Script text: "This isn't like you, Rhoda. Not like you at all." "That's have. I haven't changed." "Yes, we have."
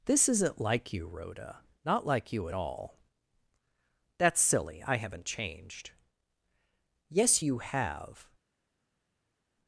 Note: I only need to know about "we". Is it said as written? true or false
false